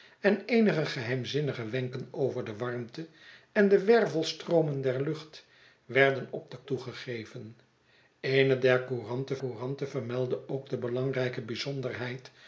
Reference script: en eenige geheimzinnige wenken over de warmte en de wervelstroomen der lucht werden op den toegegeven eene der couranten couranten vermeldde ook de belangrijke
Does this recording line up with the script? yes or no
yes